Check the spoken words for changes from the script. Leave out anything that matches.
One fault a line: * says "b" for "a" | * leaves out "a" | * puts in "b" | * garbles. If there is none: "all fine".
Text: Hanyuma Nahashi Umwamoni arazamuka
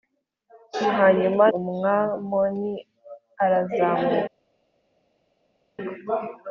* leaves out "Nahashi"